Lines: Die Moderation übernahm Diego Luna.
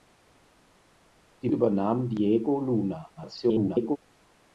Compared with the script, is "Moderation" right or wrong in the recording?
wrong